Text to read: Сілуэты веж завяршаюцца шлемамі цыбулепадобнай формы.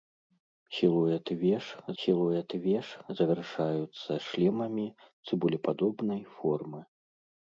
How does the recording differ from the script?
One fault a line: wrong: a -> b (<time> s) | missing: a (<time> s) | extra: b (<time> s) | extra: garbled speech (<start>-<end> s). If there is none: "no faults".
extra: сілуэты веж (2.0 s)